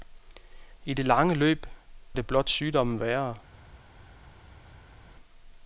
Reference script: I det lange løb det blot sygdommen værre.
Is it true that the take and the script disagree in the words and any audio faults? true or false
false